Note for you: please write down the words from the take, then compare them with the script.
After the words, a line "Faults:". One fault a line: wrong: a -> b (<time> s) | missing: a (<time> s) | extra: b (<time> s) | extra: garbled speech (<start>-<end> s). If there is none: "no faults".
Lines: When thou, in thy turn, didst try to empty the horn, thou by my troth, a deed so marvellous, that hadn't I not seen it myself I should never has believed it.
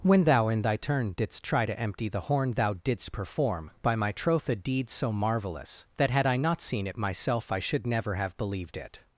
When thou, in thy turn, didst try to empty the horn, thou didst perform, by my troth, a deed so marvellous, that had I not seen it myself I should never have believed it.
Faults:
extra: didst perform (2.7 s)
wrong: hadn't -> had (6.1 s)
wrong: has -> have (8.1 s)